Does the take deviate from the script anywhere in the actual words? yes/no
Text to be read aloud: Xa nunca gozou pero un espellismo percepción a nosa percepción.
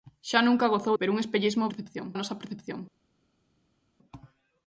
no